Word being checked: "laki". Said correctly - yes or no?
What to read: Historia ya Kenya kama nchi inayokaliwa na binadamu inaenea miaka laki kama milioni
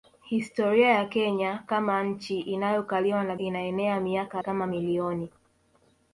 no